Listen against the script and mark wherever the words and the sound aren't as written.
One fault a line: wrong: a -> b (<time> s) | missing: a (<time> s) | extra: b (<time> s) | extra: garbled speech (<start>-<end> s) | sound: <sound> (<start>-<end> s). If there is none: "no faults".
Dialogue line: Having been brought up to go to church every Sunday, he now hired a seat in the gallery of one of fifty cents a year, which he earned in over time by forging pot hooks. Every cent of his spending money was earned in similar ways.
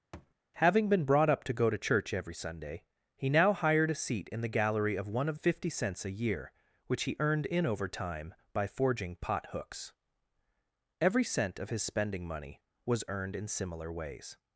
sound: thud (0.1-0.3 s)